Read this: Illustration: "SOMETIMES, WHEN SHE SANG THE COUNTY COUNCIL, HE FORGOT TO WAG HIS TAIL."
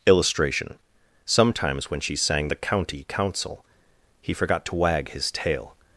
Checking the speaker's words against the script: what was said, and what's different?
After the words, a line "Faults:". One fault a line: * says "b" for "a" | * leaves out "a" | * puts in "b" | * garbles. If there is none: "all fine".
Illustration: "SOMETIMES, WHEN SHE SANG THE COUNTY COUNCIL, HE FORGOT TO WAG HIS TAIL."
Faults:
all fine